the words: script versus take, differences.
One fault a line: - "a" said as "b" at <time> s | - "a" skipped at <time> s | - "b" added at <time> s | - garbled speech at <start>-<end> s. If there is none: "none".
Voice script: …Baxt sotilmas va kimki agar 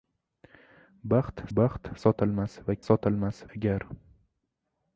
- "baxt" added at 1.6 s
- "kimki" said as "sotilmas" at 2.9 s